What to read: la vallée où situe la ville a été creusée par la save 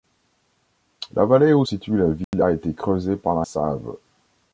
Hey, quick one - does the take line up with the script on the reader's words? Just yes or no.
yes